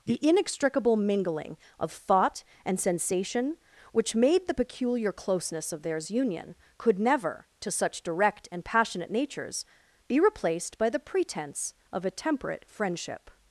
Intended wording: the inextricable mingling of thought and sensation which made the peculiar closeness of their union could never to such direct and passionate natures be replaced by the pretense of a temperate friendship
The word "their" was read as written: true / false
false